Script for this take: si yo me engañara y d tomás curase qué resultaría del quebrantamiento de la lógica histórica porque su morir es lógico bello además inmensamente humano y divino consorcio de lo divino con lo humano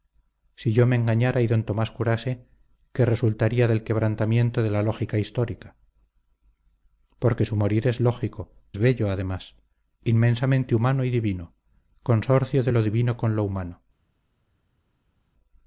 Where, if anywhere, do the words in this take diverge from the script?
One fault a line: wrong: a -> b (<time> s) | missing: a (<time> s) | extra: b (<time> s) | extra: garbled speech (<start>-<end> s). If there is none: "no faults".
no faults